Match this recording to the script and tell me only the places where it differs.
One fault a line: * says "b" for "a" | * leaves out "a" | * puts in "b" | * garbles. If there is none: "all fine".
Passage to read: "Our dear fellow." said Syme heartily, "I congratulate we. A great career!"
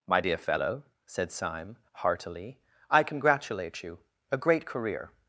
* says "My" for "Our"
* says "you" for "we"